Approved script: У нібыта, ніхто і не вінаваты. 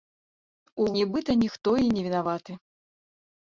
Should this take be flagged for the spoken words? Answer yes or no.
no